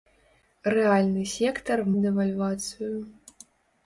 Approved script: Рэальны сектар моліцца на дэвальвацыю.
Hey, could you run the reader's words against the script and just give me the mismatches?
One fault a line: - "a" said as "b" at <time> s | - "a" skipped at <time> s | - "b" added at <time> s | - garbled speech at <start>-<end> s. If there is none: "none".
- "моліцца на" skipped at 1.8 s